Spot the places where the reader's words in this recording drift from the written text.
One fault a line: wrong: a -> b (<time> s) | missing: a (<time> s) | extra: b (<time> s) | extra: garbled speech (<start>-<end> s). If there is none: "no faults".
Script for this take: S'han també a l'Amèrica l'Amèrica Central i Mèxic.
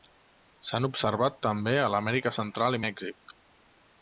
extra: observat (0.9 s)
missing: l'Amèrica (2.4 s)